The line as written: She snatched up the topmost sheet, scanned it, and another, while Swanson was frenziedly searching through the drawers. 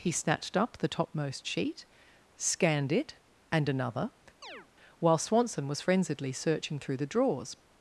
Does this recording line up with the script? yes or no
no